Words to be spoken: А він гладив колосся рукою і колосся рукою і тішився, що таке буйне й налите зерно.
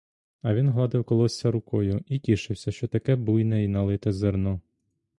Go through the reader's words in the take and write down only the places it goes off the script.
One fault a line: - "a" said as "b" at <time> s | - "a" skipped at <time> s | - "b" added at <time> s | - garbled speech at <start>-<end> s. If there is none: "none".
- "колосся рукою і" skipped at 2.2 s